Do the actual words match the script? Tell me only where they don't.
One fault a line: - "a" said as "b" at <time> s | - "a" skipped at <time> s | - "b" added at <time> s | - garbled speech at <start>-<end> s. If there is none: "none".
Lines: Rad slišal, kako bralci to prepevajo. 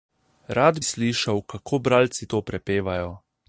none